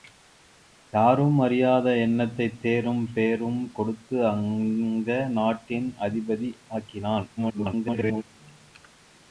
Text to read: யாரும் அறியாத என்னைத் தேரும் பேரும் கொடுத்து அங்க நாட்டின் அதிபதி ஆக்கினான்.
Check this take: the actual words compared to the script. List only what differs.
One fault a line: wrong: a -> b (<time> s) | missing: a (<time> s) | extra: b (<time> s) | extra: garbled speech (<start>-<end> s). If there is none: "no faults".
extra: garbled speech (7.4-8.2 s)